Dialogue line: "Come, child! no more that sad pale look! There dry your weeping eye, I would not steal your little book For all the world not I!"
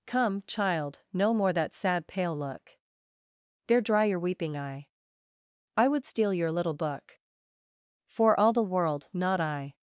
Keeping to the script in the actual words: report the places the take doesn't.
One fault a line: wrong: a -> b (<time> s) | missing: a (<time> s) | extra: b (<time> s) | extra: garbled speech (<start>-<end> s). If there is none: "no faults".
missing: not (6.0 s)